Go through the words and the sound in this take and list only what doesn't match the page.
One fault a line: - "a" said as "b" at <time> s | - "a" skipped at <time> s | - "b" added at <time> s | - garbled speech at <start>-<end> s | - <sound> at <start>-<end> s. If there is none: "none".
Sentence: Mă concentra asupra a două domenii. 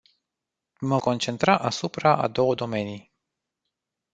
none